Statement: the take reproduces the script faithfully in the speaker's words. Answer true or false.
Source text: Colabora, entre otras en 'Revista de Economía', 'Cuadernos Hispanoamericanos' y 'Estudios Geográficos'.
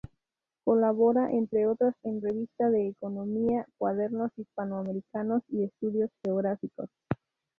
true